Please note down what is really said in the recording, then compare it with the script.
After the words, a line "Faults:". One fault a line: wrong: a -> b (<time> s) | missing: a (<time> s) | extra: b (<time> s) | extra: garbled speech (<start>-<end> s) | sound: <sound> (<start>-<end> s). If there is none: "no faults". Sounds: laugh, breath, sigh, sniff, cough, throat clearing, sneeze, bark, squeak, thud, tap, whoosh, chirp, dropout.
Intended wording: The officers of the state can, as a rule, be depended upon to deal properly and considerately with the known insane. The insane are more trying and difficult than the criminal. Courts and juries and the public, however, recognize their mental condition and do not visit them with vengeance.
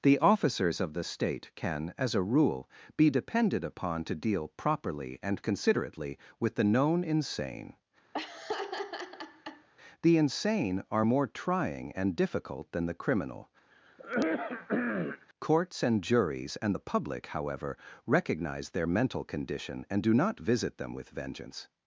The officers of the state can, as a rule, be depended upon to deal properly and considerately with the known insane. The insane are more trying and difficult than the criminal. Courts and juries and the public, however, recognize their mental condition and do not visit them with vengeance.
Faults:
sound: laugh (8.1-9.7 s)
sound: throat clearing (13.7-15.3 s)